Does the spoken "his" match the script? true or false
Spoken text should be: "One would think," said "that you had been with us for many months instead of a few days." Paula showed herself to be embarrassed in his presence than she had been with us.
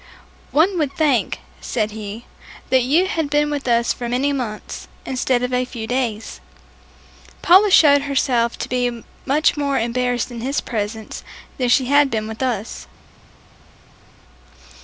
true